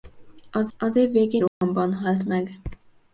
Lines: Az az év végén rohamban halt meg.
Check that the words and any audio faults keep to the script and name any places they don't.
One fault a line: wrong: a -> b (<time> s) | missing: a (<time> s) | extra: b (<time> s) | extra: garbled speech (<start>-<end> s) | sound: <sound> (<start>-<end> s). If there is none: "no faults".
sound: dropout (1.5-1.6 s)